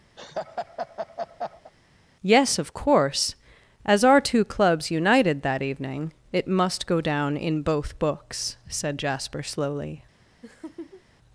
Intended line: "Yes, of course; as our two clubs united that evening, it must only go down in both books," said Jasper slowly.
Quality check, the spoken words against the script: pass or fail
fail